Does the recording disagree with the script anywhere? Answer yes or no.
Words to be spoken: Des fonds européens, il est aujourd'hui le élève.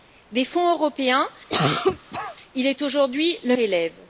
no